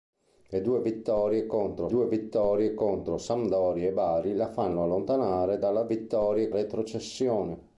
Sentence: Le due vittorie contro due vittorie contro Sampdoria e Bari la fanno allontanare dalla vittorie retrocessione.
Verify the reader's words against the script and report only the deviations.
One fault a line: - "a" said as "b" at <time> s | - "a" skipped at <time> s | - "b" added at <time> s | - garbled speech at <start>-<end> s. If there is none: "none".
none